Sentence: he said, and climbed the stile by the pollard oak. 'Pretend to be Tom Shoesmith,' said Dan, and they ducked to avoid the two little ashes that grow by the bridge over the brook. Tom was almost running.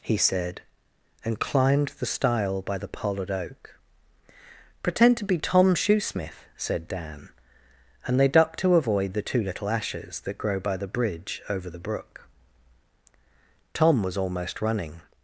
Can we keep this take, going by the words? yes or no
yes